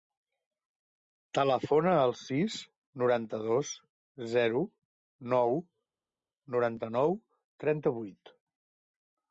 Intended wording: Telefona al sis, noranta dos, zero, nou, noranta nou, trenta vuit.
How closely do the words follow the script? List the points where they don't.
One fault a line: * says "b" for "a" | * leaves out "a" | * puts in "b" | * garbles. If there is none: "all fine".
all fine